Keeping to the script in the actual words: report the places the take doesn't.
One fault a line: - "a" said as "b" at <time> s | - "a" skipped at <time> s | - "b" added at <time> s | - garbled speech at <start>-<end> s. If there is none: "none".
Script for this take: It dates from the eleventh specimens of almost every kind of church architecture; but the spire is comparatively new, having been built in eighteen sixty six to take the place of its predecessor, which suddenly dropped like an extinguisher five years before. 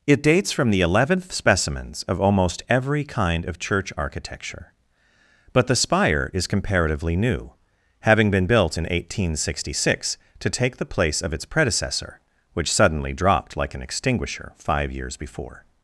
none